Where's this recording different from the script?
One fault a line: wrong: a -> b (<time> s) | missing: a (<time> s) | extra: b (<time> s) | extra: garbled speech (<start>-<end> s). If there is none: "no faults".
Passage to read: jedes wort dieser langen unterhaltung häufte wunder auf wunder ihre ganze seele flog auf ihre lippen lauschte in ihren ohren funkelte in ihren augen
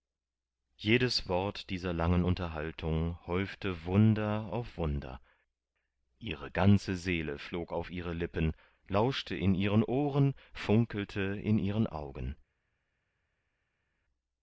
no faults